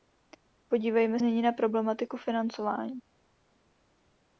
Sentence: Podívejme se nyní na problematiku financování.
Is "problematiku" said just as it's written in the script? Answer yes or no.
yes